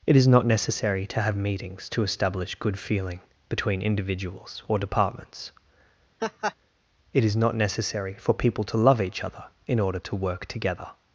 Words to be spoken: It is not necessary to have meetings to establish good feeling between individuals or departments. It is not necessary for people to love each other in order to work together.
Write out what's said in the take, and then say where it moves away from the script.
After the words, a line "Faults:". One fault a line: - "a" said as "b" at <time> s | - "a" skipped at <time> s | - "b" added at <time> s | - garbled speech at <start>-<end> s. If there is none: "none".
It is not necessary to have meetings to establish good feeling between individuals or departments. It is not necessary for people to love each other in order to work together.
Faults:
none